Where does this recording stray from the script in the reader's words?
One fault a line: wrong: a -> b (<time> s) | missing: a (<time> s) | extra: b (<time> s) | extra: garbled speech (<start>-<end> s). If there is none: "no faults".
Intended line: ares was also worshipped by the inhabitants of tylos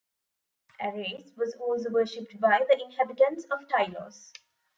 no faults